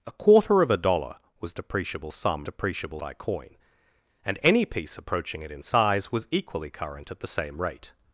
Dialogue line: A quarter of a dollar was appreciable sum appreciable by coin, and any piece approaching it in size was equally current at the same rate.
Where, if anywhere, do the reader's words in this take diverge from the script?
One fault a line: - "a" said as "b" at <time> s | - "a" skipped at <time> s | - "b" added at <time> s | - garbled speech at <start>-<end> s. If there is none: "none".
none